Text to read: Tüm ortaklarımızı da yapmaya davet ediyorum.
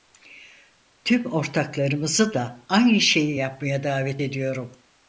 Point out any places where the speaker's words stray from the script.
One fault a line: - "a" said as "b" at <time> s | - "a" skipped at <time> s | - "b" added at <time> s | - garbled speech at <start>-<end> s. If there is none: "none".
- "aynı şeyi" added at 2.7 s